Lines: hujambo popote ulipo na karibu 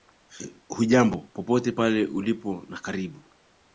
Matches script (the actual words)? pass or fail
fail